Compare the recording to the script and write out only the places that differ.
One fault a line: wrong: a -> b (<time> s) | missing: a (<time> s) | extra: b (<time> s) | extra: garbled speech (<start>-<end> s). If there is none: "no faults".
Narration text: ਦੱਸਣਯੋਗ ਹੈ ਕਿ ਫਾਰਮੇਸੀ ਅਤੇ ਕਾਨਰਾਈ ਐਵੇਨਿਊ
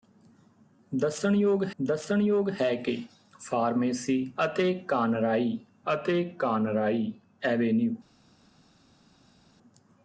extra: ਦੱਸਣਯੋਗ (1.8 s)
extra: ਅਤੇ ਕਾਨਰਾਈ (5.9 s)